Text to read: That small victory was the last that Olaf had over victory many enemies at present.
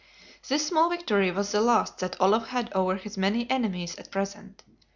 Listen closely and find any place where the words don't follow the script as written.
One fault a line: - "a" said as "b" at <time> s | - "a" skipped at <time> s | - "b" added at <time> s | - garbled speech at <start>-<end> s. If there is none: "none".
- "That" said as "This" at 0.5 s
- "victory" said as "his" at 2.9 s